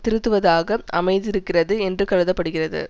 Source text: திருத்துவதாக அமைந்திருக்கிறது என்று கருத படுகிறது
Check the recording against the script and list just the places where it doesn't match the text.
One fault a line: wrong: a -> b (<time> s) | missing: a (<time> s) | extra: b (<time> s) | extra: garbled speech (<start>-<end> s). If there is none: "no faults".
no faults